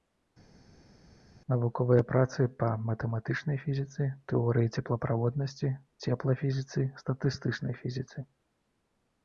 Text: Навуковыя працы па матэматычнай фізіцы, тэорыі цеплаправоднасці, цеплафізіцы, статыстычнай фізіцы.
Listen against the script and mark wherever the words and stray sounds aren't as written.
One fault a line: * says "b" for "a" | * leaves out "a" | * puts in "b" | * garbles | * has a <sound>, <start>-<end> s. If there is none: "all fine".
all fine